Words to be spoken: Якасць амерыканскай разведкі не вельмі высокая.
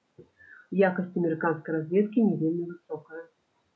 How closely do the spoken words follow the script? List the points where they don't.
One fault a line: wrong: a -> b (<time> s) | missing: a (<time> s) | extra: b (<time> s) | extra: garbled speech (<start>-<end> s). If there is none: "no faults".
no faults